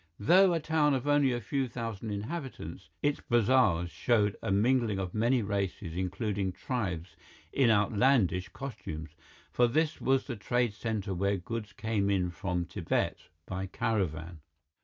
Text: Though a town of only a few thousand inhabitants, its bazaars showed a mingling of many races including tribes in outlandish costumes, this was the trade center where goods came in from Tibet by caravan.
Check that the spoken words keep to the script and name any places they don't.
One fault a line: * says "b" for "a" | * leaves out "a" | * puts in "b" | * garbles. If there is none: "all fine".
* puts in "for"